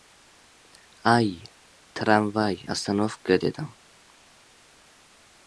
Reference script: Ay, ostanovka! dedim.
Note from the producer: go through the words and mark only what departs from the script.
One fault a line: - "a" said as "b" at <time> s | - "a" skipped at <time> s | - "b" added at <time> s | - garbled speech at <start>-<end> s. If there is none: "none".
- "tramvay" added at 1.9 s